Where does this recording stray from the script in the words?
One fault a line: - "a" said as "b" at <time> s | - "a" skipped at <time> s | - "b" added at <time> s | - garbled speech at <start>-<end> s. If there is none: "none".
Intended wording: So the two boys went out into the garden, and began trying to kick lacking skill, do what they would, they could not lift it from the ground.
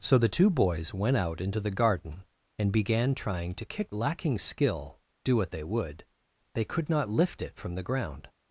none